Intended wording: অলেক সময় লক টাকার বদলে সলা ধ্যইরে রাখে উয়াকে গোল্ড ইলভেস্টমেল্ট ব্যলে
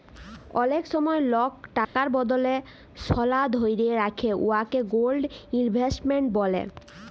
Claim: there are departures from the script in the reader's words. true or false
false